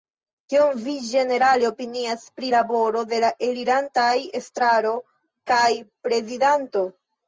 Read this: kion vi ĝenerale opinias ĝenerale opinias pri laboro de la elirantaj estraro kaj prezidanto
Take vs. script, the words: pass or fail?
fail